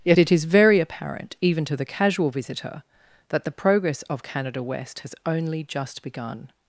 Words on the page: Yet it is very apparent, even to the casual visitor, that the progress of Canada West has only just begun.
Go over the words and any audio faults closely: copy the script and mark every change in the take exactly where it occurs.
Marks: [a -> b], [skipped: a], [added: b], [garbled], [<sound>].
Yet it is very apparent, even to the casual visitor, that the progress of Canada West has only just begun.